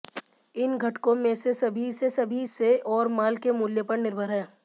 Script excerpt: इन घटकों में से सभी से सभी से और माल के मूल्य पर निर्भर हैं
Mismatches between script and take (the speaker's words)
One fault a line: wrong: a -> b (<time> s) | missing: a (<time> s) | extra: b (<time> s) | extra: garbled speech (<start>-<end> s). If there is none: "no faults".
no faults